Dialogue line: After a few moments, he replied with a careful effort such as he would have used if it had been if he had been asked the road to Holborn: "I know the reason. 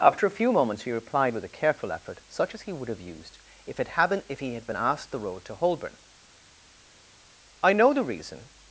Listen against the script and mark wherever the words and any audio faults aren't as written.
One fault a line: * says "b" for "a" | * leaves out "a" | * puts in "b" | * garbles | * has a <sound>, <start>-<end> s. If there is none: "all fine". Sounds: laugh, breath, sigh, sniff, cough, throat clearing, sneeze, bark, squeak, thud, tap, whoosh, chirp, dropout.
all fine